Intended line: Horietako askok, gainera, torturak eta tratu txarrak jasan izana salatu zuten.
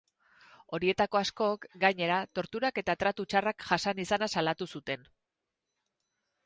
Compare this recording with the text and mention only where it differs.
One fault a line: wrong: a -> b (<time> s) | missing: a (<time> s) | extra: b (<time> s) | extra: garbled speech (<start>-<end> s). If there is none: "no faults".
no faults